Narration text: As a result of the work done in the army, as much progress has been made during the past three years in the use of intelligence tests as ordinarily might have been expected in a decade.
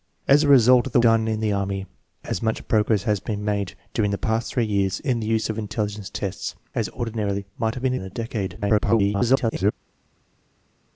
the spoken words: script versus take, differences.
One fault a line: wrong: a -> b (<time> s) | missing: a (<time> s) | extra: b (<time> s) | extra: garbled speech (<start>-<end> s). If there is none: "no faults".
missing: work (1.0 s)
missing: expected (7.9 s)
extra: garbled speech (8.6-9.7 s)